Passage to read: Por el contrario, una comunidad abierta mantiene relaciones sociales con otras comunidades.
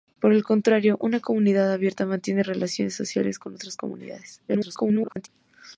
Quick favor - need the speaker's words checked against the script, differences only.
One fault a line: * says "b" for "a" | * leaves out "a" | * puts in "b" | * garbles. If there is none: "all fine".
* garbles